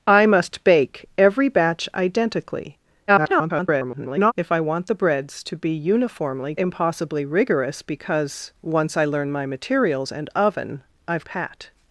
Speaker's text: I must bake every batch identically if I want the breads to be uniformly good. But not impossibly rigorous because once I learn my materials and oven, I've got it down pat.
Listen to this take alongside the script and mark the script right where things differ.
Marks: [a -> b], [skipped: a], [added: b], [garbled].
I must bake every batch identically [garbled] if I want the breads to be uniformly [skipped: good. But not] impossibly rigorous because once I learn my materials and oven, I've [skipped: got it down] pat.